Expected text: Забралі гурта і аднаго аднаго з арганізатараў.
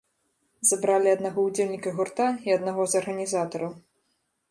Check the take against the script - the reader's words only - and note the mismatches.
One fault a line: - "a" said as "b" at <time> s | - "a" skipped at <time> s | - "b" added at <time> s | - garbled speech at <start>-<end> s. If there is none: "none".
- "аднаго ўдзельніка" added at 1.2 s
- "аднаго" skipped at 2.8 s